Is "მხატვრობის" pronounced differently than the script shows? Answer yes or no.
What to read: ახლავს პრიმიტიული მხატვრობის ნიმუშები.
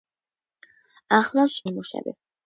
yes